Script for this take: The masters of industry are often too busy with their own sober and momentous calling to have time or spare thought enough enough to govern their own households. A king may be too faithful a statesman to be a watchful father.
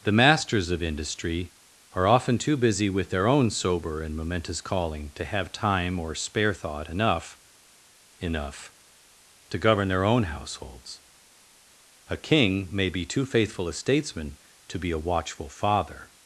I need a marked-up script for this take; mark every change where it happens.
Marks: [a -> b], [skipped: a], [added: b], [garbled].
The masters of industry are often too busy with their own sober and momentous calling to have time or spare thought enough enough to govern their own households. A king may be too faithful a statesman to be a watchful father.